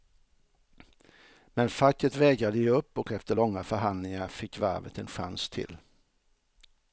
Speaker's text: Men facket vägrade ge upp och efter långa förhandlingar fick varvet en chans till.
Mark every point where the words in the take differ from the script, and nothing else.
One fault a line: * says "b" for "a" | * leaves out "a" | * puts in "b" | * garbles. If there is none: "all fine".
all fine